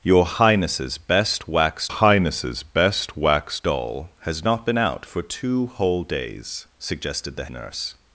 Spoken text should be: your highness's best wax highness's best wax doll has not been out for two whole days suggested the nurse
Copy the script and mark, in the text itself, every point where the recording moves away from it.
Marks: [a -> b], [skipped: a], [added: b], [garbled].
your highness's best wax highness's best wax doll has not been out for two whole days suggested the nurse